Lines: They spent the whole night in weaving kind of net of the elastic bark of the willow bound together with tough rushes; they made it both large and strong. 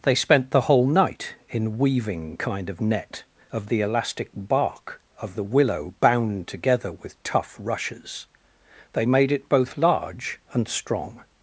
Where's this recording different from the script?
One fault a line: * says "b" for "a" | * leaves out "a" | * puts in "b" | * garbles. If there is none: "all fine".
all fine